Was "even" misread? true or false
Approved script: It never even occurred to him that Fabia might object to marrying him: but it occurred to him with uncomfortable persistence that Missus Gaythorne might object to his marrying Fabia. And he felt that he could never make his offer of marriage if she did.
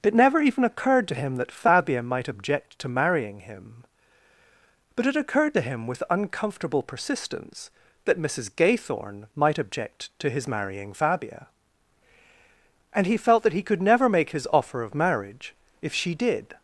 false